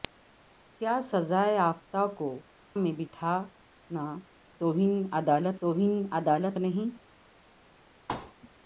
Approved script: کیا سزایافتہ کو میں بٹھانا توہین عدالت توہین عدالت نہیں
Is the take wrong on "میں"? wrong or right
right